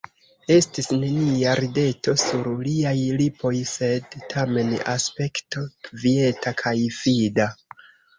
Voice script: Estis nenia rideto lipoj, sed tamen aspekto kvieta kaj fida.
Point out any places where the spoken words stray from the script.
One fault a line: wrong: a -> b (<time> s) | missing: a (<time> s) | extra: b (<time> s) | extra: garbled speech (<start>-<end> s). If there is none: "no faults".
extra: sur liaj (2.2 s)